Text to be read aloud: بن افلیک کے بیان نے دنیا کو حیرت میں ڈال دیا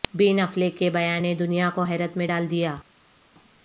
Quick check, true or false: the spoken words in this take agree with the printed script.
true